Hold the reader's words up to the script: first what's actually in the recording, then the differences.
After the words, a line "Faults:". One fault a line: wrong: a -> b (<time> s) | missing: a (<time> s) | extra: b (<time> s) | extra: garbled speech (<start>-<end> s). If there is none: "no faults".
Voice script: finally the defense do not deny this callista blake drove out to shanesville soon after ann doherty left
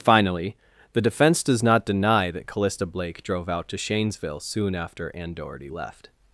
finally the defense does not deny that callista blake drove out to shanesville soon after ann doherty left
Faults:
wrong: do -> does (1.4 s)
wrong: this -> that (2.3 s)